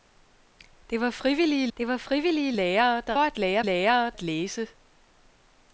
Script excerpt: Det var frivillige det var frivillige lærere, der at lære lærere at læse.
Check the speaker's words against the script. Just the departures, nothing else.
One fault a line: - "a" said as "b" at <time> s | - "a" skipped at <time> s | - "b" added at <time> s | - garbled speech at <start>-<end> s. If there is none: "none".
none